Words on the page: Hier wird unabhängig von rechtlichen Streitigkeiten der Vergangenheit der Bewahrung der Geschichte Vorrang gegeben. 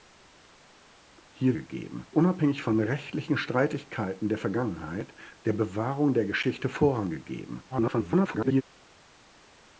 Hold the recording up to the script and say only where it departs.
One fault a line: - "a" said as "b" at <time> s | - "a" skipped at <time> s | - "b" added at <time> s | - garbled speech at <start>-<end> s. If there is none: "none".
- "wird" said as "gegeben" at 1.5 s
- garbled speech at 7.7-8.6 s